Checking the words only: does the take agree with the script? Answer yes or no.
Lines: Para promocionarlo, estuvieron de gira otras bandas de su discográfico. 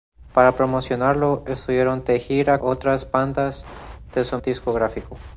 yes